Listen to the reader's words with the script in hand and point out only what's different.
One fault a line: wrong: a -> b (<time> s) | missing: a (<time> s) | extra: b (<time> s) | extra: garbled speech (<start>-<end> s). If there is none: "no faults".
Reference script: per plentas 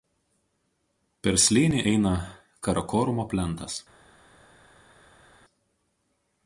extra: slėnį eina karakorumo (1.4 s)